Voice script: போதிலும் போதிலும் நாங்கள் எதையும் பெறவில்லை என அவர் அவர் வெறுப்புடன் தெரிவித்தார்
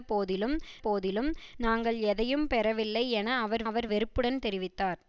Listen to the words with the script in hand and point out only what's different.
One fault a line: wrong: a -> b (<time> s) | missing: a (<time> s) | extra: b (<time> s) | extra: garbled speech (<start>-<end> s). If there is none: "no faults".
no faults